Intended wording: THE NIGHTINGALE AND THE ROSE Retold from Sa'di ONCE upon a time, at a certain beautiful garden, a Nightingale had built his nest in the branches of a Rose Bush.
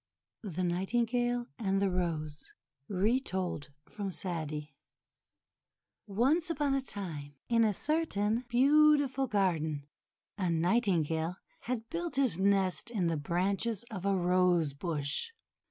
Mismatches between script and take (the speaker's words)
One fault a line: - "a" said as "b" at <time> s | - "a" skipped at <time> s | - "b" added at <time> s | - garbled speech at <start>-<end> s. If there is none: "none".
- "at" said as "in" at 7.5 s